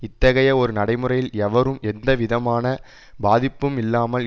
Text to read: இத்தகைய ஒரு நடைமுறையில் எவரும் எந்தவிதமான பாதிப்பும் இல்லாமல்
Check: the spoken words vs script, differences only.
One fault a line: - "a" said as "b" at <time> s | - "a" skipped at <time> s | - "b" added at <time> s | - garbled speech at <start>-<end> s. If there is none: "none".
none